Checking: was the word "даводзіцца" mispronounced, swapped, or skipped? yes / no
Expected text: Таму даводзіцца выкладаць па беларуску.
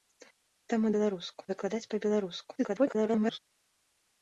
yes